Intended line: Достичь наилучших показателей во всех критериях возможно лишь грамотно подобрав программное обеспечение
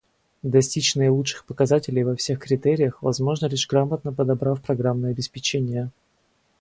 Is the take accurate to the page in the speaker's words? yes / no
yes